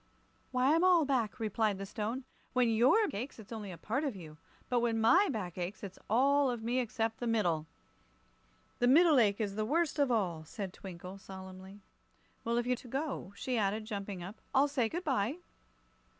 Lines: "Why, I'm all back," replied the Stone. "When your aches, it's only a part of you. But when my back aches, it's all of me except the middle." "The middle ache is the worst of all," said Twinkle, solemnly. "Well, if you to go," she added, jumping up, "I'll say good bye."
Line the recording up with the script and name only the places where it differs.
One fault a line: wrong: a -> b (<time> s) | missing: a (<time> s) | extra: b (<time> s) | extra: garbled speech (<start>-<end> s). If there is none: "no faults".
no faults